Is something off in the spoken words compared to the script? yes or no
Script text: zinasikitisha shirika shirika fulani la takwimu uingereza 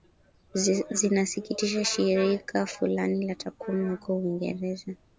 yes